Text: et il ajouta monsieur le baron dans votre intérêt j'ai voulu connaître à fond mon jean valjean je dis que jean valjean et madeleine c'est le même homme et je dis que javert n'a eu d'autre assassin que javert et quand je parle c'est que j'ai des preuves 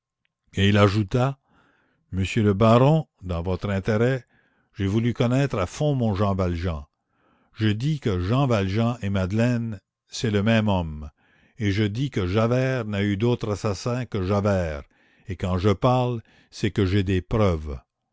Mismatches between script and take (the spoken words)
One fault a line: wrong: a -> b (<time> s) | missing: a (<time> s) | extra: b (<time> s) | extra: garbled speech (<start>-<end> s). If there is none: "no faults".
no faults